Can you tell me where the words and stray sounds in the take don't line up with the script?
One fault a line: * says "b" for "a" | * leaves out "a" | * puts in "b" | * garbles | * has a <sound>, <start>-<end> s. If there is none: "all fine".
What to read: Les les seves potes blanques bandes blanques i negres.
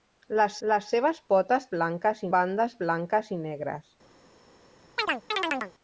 * has a chirp, 5.0-5.7 s